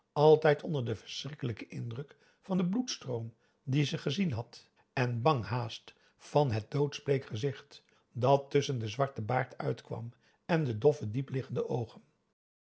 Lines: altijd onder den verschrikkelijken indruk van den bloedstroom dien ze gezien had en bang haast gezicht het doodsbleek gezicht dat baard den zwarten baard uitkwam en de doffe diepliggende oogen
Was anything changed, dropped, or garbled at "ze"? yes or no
no